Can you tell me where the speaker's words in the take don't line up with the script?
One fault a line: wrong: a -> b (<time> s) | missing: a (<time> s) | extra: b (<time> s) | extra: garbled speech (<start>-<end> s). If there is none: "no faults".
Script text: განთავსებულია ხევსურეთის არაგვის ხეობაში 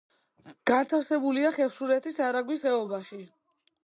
no faults